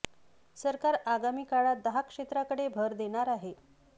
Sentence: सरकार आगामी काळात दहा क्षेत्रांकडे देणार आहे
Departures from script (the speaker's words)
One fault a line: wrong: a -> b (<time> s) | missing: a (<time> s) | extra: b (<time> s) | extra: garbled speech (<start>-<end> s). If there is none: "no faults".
extra: भर (2.7 s)